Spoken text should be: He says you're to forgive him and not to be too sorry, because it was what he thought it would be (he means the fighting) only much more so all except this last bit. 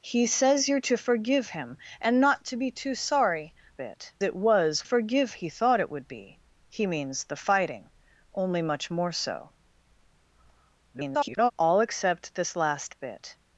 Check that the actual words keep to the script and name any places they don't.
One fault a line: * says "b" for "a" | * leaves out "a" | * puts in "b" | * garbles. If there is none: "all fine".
* says "bit" for "because"
* says "forgive" for "what"
* garbles